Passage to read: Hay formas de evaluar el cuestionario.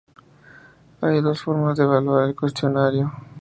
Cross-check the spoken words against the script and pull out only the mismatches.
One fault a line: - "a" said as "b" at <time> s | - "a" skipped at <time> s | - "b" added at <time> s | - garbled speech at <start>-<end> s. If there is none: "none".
- "dos" added at 1.2 s